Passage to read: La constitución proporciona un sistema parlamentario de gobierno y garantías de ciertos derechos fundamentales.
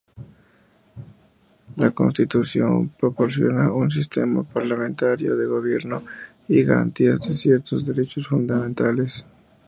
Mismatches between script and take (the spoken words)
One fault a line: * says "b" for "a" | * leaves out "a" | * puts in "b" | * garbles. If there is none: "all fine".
all fine